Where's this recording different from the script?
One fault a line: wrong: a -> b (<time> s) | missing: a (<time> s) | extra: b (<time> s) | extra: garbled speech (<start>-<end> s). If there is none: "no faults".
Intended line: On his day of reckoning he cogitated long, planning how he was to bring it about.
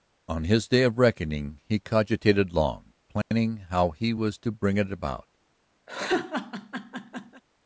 no faults